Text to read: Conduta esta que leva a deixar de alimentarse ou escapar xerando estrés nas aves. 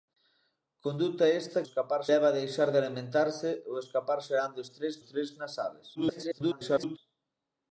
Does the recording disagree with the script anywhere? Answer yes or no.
yes